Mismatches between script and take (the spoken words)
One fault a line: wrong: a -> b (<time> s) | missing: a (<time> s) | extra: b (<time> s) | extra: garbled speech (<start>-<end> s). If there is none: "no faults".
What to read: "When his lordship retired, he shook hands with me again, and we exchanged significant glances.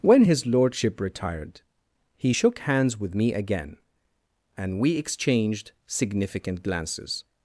no faults